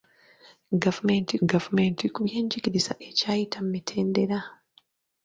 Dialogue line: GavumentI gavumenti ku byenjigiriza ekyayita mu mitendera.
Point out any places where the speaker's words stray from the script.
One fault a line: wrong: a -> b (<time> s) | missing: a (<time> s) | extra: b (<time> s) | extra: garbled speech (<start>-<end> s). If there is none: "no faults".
no faults